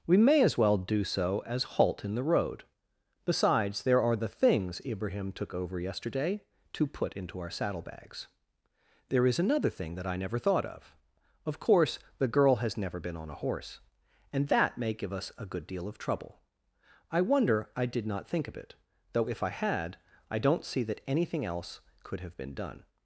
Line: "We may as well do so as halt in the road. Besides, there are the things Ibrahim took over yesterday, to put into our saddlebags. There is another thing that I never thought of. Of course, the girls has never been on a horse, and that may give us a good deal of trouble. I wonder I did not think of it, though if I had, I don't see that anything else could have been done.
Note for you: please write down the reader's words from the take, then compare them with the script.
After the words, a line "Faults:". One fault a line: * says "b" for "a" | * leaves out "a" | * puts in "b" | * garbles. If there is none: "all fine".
"We may as well do so as halt in the road. Besides, there are the things Ibrahim took over yesterday, to put into our saddlebags. There is another thing that I never thought of. Of course, the girl has never been on a horse, and that may give us a good deal of trouble. I wonder I did not think of it, though if I had, I don't see that anything else could have been done.
Faults:
* says "girl" for "girls"